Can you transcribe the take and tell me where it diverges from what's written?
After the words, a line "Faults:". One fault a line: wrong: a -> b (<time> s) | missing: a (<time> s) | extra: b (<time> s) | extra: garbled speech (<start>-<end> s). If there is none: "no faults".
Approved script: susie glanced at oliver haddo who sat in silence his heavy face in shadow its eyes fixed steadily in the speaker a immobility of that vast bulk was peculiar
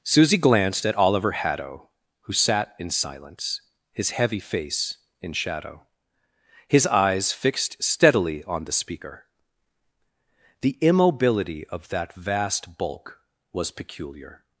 susie glanced at oliver haddo who sat in silence his heavy face in shadow his eyes fixed steadily on the speaker the immobility of that vast bulk was peculiar
Faults:
wrong: its -> his (6.7 s)
wrong: in -> on (8.4 s)
wrong: a -> the (10.6 s)